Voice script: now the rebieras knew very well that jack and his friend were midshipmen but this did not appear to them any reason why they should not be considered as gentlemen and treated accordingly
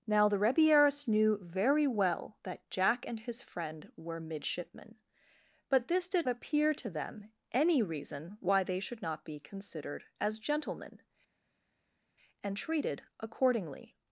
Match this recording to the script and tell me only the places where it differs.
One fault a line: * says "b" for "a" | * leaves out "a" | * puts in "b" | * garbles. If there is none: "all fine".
* leaves out "not"